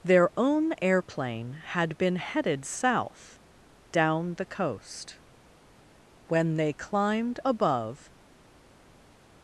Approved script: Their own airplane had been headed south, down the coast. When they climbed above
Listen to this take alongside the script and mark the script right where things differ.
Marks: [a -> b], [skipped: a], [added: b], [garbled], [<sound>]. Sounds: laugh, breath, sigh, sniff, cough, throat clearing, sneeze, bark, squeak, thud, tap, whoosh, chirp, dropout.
Their own airplane had been headed south, down the coast. When they climbed above